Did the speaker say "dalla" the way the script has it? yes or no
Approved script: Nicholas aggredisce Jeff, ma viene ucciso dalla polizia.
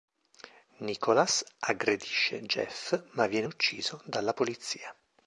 yes